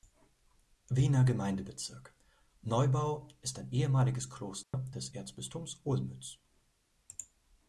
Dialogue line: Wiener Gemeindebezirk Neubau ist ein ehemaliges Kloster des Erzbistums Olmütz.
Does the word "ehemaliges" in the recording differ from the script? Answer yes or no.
no